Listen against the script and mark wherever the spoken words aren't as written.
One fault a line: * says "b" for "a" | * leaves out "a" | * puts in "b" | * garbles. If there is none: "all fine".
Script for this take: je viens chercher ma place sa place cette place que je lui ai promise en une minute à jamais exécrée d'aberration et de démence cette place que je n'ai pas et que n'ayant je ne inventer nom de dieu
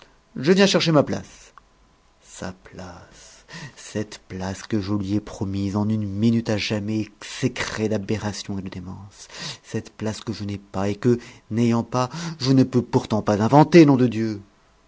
* puts in "pas"
* puts in "peux pourtant pas"